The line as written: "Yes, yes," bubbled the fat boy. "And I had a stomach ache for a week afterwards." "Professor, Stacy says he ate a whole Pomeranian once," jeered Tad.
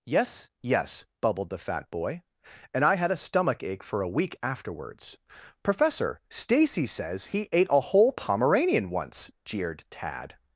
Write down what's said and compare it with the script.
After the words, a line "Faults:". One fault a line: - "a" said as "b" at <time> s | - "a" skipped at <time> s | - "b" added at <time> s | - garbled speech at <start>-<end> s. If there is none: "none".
"Yes, yes," bubbled the fat boy. "And I had a stomach ache for a week afterwards." "Professor, Stacy says he ate a whole Pomeranian once," jeered Tad.
Faults:
none